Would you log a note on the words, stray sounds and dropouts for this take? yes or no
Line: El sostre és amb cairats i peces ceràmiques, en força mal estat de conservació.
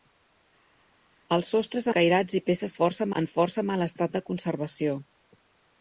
yes